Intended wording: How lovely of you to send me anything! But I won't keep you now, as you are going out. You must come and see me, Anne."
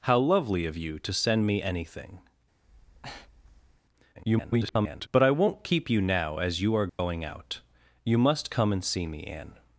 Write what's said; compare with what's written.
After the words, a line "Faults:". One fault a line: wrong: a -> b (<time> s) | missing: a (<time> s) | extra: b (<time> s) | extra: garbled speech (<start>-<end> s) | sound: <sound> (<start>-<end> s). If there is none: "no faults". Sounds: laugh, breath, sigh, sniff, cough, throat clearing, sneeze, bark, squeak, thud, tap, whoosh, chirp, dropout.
How lovely of you to send me anything! [garbled] But I won't keep you now, as you are going out. You must come and see me, Anne."
Faults:
sound: breath (2.6-3.8 s)
extra: garbled speech (4.1-5.1 s)
sound: dropout (6.9-7.0 s)